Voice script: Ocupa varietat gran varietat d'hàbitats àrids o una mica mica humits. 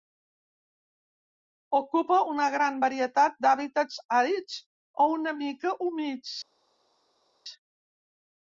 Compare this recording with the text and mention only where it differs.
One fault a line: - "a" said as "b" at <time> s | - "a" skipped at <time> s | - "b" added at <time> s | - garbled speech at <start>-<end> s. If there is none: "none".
- "varietat" said as "una" at 2.3 s
- "mica" skipped at 5.7 s